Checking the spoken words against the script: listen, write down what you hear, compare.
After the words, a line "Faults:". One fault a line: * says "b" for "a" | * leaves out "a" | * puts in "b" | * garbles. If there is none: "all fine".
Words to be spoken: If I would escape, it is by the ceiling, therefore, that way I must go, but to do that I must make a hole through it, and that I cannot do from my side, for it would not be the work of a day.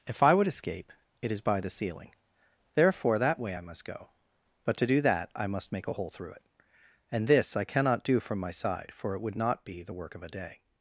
If I would escape, it is by the ceiling, therefore, that way I must go, but to do that I must make a hole through it, and this I cannot do from my side, for it would not be the work of a day.
Faults:
* says "this" for "that"